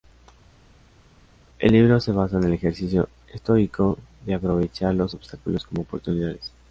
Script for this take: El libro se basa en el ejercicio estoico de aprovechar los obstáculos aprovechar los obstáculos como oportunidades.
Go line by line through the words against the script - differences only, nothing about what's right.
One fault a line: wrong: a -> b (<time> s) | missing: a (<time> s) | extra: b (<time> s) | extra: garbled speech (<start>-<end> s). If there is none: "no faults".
missing: aprovechar los obstáculos (5.6 s)